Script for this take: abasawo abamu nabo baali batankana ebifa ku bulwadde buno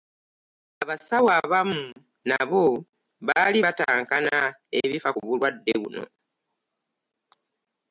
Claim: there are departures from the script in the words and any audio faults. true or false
false